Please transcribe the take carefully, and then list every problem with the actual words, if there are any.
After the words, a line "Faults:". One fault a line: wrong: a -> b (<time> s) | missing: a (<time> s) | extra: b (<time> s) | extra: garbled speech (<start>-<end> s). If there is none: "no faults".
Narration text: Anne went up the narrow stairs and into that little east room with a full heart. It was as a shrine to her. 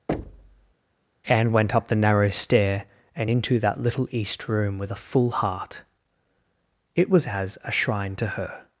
Anne went up the narrow stair and into that little east room with a full heart. It was as a shrine to her.
Faults:
wrong: stairs -> stair (2.3 s)